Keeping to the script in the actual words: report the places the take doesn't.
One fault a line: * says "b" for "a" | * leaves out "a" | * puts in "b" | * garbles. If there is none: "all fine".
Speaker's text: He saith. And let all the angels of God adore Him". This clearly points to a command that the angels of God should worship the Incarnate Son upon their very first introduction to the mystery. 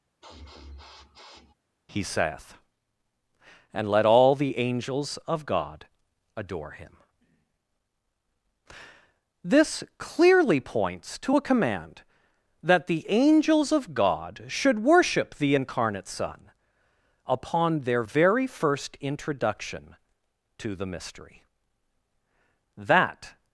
* puts in "That"